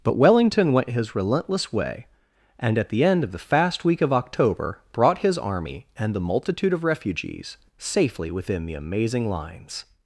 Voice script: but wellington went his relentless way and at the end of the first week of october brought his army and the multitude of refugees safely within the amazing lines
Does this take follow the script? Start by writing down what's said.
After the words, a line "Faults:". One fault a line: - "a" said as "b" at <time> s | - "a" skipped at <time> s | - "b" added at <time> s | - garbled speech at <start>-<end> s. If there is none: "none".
but wellington went his relentless way and at the end of the fast week of october brought his army and the multitude of refugees safely within the amazing lines
Faults:
- "first" said as "fast" at 3.4 s